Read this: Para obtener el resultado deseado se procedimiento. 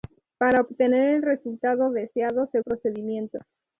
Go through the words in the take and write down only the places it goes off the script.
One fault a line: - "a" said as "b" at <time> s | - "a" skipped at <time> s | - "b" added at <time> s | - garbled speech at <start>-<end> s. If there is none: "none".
none